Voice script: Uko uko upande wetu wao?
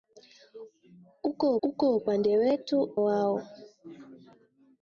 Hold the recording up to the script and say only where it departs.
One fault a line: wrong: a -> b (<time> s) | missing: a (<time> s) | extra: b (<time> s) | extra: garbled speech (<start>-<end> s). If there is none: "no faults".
no faults